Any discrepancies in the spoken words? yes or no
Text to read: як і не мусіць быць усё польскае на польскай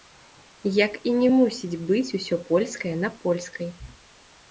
no